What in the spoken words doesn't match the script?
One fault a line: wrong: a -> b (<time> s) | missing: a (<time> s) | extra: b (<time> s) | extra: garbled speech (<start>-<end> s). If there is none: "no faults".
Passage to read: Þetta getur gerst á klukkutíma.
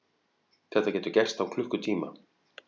no faults